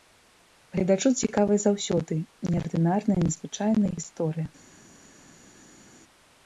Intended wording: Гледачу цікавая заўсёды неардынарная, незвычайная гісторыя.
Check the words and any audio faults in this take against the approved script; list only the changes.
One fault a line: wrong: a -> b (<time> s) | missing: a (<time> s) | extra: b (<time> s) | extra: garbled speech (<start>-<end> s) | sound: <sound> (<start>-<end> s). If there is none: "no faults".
no faults